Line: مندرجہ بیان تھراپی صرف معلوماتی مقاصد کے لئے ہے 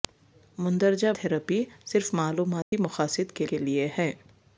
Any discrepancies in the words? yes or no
yes